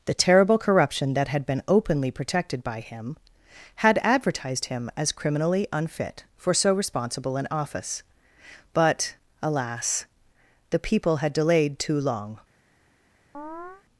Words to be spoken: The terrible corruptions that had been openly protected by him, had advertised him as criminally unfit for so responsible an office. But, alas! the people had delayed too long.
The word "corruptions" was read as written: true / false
false